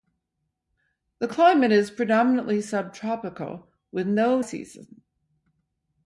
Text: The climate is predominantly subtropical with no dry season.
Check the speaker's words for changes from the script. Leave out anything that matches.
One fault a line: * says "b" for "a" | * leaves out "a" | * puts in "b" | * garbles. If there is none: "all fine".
* leaves out "dry"